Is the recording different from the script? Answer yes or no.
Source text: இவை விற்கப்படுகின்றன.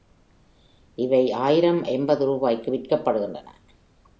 yes